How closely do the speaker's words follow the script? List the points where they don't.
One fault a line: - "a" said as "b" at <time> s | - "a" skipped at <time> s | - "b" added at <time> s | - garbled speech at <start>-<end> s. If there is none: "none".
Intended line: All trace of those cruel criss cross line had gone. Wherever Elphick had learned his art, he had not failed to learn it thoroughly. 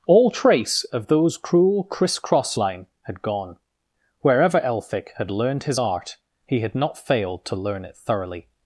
none